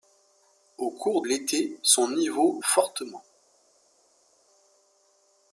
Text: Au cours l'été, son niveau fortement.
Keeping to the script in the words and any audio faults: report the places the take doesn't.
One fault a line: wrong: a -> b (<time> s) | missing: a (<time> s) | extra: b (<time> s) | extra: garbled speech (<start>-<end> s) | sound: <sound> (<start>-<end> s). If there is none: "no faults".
no faults